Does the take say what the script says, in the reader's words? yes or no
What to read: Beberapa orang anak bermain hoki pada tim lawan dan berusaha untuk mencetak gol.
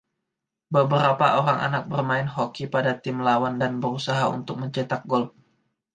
yes